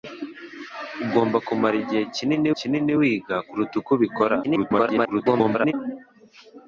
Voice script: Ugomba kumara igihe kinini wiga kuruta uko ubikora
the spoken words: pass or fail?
fail